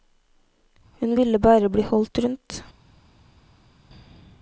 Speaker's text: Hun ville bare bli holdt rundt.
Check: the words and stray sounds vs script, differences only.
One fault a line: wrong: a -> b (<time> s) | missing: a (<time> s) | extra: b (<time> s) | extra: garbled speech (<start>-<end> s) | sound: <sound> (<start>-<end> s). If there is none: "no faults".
no faults